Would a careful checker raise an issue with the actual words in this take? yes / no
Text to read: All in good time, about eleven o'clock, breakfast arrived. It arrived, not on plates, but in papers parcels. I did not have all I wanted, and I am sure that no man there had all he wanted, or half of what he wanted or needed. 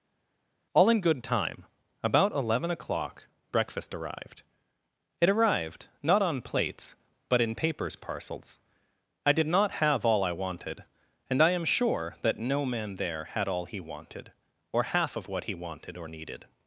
no